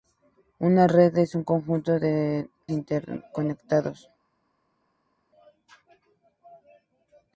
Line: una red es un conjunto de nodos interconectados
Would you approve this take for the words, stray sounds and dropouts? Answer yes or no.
no